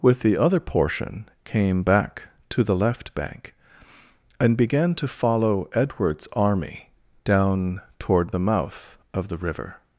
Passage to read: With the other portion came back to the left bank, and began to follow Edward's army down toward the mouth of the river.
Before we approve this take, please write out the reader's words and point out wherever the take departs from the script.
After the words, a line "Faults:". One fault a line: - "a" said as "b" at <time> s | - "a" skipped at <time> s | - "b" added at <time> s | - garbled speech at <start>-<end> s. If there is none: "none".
With the other portion came back to the left bank, and began to follow Edward's army down toward the mouth of the river.
Faults:
none